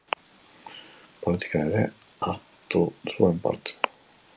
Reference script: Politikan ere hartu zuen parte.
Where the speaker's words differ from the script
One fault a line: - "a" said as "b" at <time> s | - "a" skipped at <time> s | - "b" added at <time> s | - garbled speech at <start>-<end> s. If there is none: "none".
none